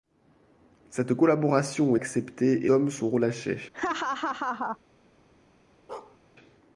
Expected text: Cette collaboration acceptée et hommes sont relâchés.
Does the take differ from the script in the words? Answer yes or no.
no